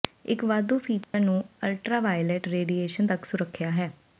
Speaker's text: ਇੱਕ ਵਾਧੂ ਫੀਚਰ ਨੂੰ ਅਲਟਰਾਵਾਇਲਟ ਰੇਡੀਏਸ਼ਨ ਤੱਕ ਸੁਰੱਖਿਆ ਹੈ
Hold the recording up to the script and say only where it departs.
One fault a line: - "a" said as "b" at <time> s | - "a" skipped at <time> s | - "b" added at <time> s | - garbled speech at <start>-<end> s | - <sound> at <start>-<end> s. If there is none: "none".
- dropout at 1.0-1.1 s